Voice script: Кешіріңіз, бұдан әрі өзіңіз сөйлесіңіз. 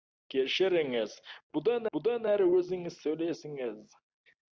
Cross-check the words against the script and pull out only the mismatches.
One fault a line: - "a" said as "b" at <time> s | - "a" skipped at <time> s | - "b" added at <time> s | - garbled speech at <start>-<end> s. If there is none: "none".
- "бұдан" added at 2.0 s